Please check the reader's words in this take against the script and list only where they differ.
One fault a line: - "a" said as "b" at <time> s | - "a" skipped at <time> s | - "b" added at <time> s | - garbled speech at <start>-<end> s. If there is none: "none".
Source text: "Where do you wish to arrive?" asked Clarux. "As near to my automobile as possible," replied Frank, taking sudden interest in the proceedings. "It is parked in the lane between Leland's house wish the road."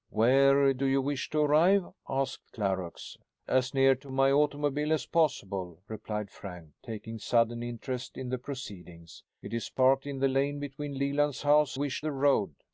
none